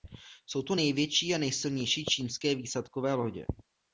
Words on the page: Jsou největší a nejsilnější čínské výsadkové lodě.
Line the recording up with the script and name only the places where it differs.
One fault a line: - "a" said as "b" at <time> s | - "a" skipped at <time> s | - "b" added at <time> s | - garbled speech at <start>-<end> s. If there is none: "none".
- "to" added at 0.6 s